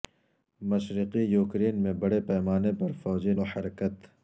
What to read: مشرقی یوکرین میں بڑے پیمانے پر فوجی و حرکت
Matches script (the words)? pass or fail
pass